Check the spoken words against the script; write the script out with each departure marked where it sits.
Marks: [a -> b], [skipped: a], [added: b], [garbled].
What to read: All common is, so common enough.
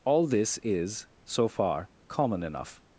All [common -> this] is, so [added: far] common enough.